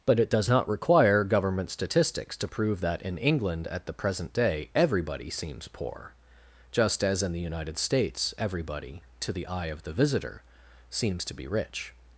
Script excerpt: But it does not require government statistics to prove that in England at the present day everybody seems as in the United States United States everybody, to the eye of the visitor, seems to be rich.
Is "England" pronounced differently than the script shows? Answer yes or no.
no